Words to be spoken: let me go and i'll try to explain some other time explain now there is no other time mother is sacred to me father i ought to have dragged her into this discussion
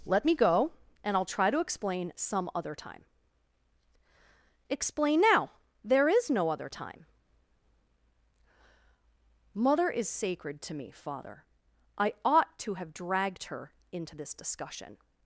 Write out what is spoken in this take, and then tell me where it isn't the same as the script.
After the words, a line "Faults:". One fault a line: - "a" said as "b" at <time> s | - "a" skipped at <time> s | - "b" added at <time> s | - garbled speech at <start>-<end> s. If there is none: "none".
let me go and i'll try to explain some other time explain now there is no other time mother is sacred to me father i ought to have dragged her into this discussion
Faults:
none